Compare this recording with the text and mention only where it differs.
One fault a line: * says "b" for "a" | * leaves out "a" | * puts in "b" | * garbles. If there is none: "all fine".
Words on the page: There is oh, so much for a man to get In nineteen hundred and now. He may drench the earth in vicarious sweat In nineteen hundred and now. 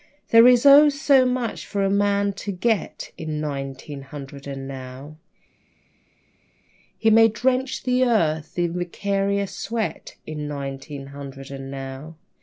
all fine